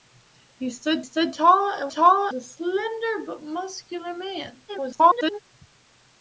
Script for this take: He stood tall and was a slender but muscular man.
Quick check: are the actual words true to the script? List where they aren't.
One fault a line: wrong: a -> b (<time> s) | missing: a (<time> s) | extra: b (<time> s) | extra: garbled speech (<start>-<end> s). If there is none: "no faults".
extra: stood (1.0 s)
wrong: was -> tall (1.9 s)
extra: garbled speech (4.7-5.4 s)